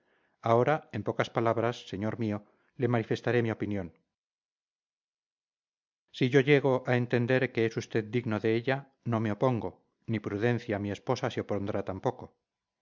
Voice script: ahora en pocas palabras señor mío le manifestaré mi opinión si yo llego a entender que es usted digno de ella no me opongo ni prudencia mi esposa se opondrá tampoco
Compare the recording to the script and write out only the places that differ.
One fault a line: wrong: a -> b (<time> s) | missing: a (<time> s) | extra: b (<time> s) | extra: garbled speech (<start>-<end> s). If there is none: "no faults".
no faults